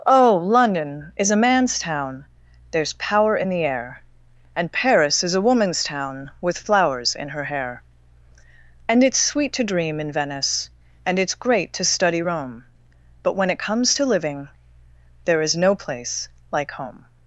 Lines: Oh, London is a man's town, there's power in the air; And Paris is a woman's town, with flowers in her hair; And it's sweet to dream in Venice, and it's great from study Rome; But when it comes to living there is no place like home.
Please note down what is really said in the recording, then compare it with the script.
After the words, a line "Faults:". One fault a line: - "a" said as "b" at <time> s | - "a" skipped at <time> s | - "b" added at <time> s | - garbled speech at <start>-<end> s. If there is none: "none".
Oh, London is a man's town, there's power in the air; And Paris is a woman's town, with flowers in her hair; And it's sweet to dream in Venice, and it's great to study Rome; But when it comes to living there is no place like home.
Faults:
- "from" said as "to" at 11.7 s